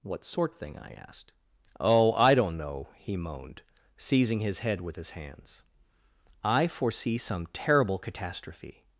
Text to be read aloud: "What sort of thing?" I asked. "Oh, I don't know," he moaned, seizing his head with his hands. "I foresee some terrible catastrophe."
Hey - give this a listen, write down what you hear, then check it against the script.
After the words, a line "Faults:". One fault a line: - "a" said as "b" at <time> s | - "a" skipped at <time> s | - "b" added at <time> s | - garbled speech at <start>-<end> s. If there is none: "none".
"What sort thing?" I asked. "Oh, I don't know," he moaned, seizing his head with his hands. "I foresee some terrible catastrophe."
Faults:
- "of" skipped at 0.6 s